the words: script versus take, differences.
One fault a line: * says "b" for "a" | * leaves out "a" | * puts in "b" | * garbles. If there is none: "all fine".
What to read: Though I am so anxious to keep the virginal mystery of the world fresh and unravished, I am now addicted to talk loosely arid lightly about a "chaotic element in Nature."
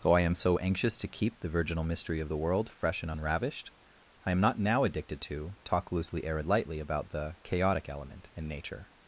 * puts in "not"
* says "the" for "a"